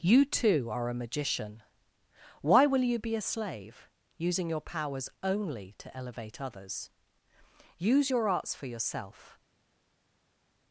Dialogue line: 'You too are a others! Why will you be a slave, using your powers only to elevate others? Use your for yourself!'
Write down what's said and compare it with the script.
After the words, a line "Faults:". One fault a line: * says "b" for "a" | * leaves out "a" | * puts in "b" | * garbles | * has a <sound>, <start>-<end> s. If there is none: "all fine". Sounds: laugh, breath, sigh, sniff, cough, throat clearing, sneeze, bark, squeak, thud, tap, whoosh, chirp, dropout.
'You too are a magician! Why will you be a slave, using your powers only to elevate others? Use your arts for yourself!'
Faults:
* says "magician" for "others"
* puts in "arts"